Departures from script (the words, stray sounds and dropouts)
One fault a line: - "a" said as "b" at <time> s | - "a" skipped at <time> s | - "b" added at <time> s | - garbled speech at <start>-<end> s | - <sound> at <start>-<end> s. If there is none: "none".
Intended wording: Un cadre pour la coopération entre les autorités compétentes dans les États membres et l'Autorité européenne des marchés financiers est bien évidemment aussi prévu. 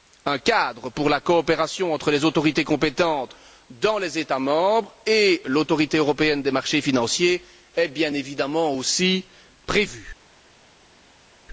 none